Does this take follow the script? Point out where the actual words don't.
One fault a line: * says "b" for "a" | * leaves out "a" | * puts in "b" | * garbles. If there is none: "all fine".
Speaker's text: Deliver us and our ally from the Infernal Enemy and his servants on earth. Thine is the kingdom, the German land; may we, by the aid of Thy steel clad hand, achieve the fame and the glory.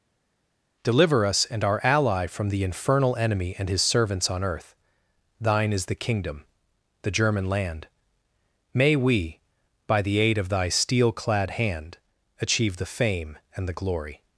all fine